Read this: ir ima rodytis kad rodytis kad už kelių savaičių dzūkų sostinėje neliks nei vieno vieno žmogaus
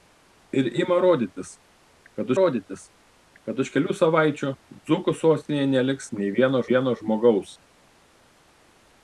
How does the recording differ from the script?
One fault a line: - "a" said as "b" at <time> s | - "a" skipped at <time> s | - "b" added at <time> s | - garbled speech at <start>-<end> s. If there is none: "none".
none